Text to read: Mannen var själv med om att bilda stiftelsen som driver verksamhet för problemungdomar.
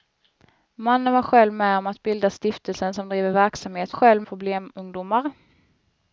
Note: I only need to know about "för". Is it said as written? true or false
false